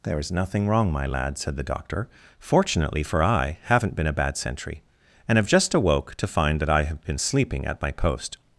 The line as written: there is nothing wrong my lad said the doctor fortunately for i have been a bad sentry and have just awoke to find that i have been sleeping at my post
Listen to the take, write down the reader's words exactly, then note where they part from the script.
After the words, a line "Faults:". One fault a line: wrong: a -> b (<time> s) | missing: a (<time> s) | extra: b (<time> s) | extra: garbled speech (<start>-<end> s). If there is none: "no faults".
there is nothing wrong my lad said the doctor fortunately for i haven't been a bad sentry and have just awoke to find that i have been sleeping at my post
Faults:
wrong: have -> haven't (3.6 s)